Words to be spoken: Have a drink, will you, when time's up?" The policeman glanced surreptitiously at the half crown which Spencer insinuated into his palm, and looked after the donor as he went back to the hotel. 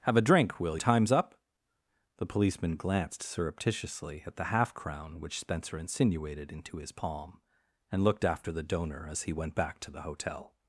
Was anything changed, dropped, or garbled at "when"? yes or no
yes